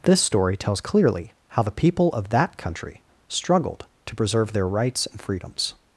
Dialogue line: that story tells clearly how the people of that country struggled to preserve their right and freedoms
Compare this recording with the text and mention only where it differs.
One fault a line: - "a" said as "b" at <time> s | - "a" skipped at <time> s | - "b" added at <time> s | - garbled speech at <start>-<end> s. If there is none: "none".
- "that" said as "this" at 0.0 s
- "right" said as "rights" at 4.7 s